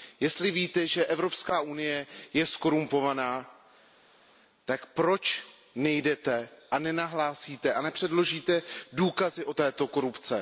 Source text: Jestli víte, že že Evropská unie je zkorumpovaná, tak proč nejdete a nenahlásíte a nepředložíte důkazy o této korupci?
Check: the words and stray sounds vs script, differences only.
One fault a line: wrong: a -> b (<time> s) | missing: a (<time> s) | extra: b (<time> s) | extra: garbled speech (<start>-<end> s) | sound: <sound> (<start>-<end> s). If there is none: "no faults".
missing: že (1.1 s)